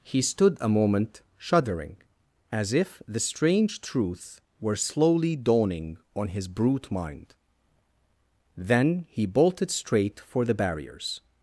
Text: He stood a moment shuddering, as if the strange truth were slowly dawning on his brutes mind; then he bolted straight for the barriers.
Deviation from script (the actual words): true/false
true